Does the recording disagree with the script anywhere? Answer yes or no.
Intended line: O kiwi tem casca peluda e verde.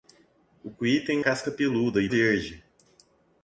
no